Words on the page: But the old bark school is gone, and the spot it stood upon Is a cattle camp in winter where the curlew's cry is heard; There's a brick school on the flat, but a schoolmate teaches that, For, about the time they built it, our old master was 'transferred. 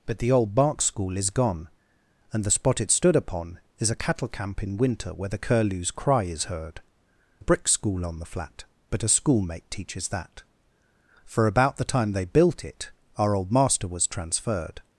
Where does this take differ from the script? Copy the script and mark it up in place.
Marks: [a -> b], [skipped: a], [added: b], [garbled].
But the old bark school is gone, and the spot it stood upon Is a cattle camp in winter where the curlew's cry is heard; [skipped: There's] a brick school on the flat, but a schoolmate teaches that, For, about the time they built it, our old master was 'transferred.